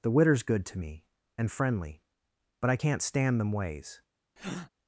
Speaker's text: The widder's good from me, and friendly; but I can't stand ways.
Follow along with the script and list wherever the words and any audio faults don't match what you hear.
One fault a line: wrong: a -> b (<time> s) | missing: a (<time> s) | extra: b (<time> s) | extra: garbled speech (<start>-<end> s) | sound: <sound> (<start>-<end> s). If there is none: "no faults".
wrong: from -> to (0.7 s)
extra: them (3.4 s)
sound: breath (4.4-4.7 s)